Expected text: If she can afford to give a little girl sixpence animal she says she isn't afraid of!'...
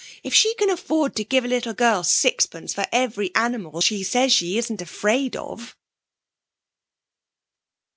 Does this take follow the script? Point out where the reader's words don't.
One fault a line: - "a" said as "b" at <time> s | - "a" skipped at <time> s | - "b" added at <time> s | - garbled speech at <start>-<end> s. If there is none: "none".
- "for every" added at 2.7 s